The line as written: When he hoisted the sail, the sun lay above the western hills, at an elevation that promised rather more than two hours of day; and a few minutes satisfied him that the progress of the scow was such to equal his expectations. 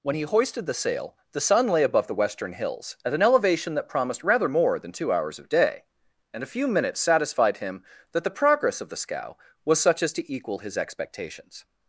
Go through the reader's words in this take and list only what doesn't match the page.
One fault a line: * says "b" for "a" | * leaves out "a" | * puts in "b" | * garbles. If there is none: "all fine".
* puts in "as"